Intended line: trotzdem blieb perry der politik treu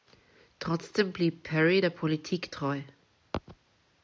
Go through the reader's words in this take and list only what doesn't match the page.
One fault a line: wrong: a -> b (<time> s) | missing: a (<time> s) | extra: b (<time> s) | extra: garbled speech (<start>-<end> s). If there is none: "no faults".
no faults